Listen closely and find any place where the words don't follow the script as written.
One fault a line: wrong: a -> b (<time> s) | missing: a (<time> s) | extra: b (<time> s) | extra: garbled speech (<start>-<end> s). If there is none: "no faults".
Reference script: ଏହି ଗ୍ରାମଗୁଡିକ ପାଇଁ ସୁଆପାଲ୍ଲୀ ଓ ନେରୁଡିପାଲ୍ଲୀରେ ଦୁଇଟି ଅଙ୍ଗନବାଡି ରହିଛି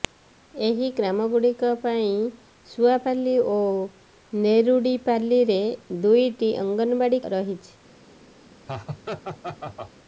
no faults